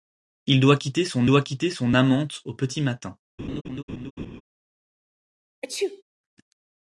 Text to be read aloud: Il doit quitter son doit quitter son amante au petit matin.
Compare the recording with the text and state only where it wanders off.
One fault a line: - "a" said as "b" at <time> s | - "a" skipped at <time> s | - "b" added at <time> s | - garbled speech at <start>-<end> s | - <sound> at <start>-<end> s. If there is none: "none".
- laugh at 3.4-4.4 s
- sneeze at 5.6-6.0 s